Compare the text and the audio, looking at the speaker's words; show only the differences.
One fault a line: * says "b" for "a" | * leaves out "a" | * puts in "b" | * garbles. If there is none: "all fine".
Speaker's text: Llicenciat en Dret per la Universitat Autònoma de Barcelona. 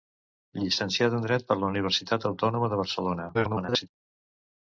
* garbles